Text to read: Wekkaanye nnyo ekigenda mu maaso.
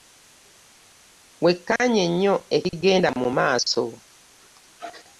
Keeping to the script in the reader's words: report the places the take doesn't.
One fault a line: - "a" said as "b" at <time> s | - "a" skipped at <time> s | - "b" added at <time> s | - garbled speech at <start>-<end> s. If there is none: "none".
none